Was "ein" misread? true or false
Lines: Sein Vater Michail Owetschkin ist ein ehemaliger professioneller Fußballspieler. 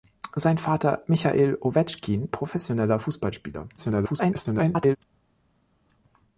true